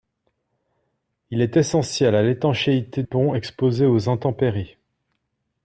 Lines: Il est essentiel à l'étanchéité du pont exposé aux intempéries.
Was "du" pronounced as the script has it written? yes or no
no